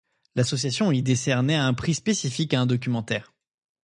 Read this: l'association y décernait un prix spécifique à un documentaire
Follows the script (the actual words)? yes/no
yes